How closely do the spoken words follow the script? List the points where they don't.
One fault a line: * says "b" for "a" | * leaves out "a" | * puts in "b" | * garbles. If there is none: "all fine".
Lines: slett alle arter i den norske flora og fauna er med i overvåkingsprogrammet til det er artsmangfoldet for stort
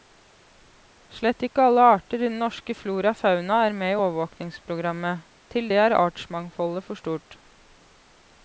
* puts in "ikke"